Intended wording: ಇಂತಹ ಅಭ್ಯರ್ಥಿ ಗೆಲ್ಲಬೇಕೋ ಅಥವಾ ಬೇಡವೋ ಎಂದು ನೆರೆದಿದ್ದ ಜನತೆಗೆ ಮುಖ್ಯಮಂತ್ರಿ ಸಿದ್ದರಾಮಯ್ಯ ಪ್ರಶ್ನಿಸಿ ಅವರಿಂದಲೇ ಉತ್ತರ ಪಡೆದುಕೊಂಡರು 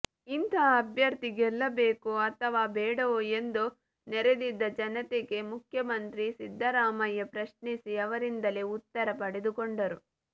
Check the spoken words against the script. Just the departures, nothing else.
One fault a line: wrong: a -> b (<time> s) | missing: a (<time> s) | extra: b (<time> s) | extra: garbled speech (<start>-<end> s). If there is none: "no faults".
no faults